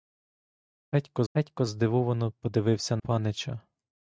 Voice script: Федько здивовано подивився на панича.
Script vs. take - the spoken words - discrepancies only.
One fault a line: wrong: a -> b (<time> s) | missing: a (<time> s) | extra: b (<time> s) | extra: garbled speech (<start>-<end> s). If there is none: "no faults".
extra: федько (1.3 s)
missing: на (3.0 s)